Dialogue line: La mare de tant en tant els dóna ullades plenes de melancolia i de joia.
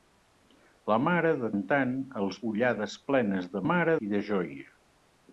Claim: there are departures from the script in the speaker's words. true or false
true